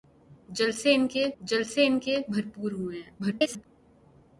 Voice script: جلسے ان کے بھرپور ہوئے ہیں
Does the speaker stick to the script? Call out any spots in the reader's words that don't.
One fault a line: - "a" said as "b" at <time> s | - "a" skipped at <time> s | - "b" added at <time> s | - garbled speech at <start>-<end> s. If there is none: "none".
- "جلسے ان کے" added at 1.4 s
- garbled speech at 3.2-3.7 s